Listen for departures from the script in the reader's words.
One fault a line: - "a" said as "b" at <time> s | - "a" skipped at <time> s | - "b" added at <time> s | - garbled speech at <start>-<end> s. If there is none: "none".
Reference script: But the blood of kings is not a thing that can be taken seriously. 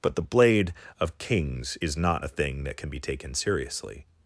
- "blood" said as "blade" at 0.2 s